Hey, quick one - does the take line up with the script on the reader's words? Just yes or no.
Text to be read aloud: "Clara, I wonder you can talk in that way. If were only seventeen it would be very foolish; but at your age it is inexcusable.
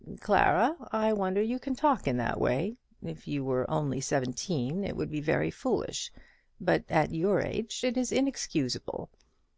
no